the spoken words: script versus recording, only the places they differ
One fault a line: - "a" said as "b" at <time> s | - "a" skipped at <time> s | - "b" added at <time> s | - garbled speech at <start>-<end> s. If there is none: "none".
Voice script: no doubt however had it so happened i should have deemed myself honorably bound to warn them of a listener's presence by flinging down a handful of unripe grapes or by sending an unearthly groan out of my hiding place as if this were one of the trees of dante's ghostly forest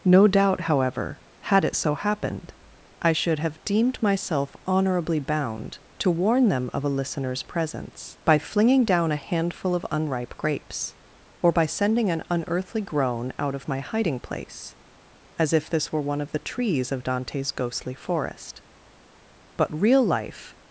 - "but real life" added at 19.6 s